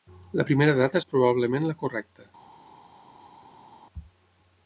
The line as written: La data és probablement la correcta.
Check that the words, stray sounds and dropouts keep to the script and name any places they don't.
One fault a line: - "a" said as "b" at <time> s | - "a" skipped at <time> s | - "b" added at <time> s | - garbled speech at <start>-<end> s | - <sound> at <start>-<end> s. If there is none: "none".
- "primera" added at 0.5 s